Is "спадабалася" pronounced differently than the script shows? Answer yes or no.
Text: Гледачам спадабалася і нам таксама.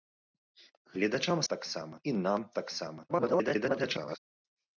yes